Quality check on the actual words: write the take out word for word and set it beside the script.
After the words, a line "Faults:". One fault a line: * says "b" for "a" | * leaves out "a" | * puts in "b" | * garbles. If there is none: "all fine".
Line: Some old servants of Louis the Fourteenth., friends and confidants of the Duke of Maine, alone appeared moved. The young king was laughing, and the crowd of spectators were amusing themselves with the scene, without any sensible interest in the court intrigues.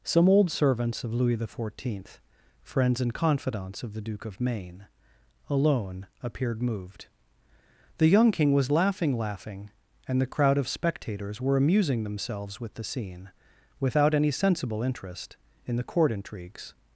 Some old servants of Louis the Fourteenth., friends and confidants of the Duke of Maine, alone appeared moved. The young king was laughing laughing, and the crowd of spectators were amusing themselves with the scene, without any sensible interest in the court intrigues.
Faults:
* puts in "laughing"